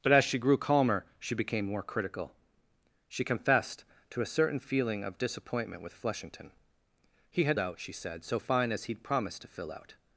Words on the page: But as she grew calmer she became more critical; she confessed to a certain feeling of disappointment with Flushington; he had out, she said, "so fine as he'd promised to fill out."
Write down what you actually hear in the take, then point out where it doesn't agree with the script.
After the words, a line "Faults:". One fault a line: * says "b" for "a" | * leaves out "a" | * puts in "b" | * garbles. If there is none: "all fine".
But as she grew calmer she became more critical; she confessed to a certain feeling of disappointment with Flushington; he had out, she said, "so fine as he'd promised to fill out."
Faults:
all fine